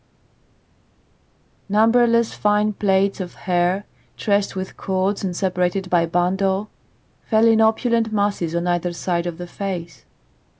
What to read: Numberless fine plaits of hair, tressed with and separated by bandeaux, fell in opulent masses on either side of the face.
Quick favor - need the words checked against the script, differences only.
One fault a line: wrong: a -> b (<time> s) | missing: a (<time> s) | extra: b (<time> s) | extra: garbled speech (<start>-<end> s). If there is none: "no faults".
extra: cords (4.8 s)